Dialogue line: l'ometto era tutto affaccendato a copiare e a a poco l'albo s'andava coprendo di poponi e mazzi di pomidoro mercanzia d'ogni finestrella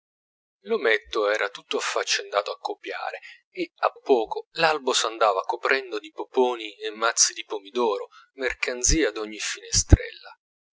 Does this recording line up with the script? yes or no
yes